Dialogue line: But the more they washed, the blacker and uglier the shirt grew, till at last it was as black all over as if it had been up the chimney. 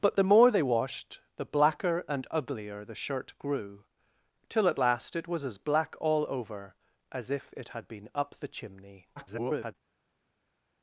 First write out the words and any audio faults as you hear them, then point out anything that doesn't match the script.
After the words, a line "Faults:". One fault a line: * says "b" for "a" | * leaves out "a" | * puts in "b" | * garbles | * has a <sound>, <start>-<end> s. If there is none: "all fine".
But the more they washed, the blacker and uglier the shirt grew, till at last it was as black all over as if it had been up the chimney. [garbled]
Faults:
* garbles